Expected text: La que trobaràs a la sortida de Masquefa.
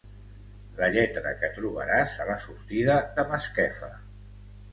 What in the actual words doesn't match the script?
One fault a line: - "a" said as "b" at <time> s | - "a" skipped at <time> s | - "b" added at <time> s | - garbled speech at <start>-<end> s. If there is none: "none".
- "lletra" added at 0.9 s